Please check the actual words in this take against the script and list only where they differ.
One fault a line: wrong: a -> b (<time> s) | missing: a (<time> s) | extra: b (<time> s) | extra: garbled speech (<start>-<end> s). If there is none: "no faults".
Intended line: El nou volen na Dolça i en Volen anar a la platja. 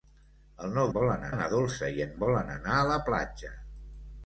no faults